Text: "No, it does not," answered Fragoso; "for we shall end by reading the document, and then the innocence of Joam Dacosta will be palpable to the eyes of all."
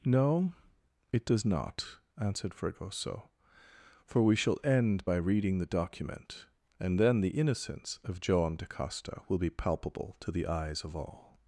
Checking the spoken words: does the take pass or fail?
pass